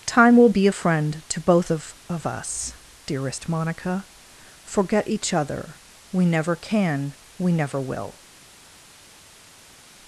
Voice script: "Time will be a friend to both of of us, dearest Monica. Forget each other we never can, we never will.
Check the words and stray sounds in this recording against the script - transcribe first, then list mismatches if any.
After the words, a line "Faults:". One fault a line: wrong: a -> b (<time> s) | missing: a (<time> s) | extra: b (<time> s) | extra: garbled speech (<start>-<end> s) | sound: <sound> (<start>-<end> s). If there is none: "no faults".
"Time will be a friend to both of of us, dearest Monica. Forget each other we never can, we never will.
Faults:
no faults